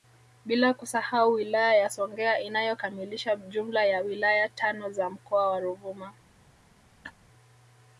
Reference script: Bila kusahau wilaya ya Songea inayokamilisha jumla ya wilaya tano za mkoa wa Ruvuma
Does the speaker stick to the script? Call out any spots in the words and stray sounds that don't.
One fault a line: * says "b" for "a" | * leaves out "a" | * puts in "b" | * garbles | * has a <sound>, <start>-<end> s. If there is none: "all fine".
* has a laugh, 7.0-7.1 s